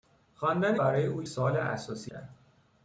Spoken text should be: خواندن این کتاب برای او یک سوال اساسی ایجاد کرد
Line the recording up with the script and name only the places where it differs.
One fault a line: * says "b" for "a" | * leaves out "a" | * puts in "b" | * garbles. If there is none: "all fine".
* leaves out "این کتاب"
* leaves out "یک"
* leaves out "ایجاد"